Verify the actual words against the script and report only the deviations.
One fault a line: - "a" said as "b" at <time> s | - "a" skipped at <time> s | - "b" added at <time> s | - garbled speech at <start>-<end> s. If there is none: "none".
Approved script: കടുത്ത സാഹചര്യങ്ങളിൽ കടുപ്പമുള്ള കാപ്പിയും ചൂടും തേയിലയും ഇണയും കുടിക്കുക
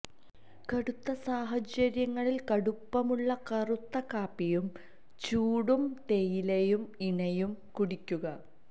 - "കറുത്ത" added at 3.5 s